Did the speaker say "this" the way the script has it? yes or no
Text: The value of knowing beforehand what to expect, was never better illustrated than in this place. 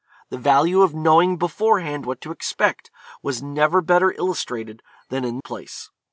no